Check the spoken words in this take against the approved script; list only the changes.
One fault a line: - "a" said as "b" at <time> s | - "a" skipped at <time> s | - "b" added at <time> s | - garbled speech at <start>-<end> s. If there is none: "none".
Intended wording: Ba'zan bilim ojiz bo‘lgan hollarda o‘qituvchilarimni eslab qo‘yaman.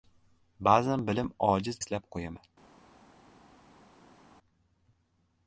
- "bo‘lgan hollarda o‘qituvchilarimni" skipped at 1.8 s